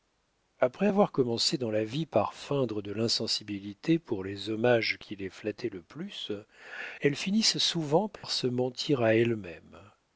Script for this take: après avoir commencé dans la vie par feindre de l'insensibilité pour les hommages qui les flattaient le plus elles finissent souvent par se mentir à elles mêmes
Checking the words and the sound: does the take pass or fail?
fail